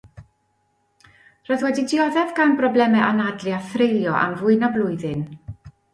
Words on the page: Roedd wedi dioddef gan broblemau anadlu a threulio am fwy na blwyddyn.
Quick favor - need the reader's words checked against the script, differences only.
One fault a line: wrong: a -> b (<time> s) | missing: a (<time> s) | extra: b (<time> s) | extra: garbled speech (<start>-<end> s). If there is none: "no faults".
no faults